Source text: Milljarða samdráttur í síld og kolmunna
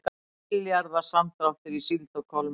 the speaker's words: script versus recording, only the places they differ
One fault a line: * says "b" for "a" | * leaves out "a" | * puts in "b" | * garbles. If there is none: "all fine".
all fine